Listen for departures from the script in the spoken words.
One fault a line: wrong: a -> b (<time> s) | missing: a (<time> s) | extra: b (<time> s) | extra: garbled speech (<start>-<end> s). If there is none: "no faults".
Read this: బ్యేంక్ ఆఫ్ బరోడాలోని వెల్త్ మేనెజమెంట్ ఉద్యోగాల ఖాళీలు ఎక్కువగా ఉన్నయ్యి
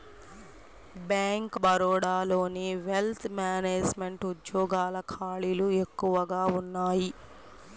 missing: ఆఫ్ (1.6 s)